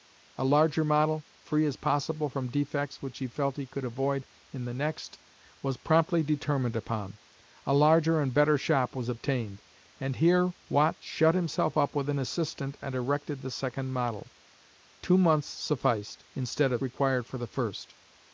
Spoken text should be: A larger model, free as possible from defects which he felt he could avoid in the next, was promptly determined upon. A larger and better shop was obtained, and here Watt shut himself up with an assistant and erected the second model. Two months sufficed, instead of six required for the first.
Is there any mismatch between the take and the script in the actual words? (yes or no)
yes